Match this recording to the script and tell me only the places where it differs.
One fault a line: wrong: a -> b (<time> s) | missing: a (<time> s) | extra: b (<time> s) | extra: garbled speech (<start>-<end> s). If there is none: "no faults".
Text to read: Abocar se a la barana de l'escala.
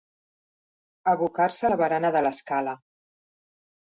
no faults